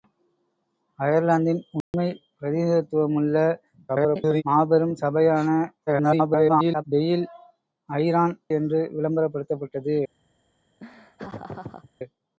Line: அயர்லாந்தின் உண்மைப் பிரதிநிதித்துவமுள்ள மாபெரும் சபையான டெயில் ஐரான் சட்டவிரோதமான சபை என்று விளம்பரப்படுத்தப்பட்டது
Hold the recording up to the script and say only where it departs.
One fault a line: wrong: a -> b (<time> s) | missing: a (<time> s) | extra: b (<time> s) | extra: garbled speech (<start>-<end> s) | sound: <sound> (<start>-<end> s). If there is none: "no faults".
sound: dropout (1.8-1.9 s)
extra: garbled speech (3.9-4.4 s)
extra: garbled speech (5.9-6.8 s)
missing: சட்டவிரோதமான சபை (8.4 s)
sound: laugh (10.8-11.9 s)